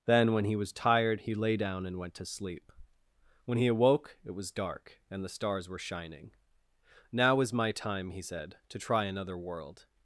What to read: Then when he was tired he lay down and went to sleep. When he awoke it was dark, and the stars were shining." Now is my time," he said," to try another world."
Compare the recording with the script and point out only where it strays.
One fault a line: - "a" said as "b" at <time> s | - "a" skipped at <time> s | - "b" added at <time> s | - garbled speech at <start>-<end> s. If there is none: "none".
none